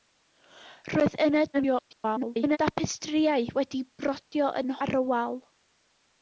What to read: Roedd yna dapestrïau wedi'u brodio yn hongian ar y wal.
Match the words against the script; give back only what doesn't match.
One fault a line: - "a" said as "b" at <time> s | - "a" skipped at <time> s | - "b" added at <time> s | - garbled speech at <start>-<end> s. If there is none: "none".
- garbled speech at 1.5-2.6 s
- "hongian" skipped at 4.8 s